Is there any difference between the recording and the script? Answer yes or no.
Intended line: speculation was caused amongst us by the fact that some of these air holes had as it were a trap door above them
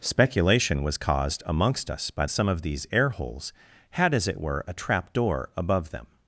yes